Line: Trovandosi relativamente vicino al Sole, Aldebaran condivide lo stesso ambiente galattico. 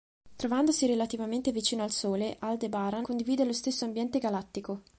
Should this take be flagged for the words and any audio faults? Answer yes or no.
no